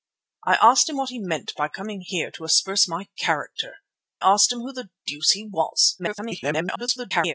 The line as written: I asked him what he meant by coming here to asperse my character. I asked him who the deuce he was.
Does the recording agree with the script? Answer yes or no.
no